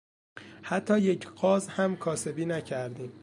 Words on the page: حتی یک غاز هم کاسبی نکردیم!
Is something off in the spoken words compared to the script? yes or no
no